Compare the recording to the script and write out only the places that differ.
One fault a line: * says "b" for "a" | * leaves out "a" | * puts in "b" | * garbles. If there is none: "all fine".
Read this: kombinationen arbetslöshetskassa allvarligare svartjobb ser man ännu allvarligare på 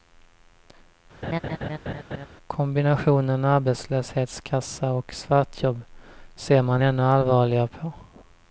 * says "och" for "allvarligare"